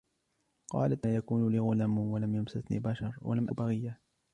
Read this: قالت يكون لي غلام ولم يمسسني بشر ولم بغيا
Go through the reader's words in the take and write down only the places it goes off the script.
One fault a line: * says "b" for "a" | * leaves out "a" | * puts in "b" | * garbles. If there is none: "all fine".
all fine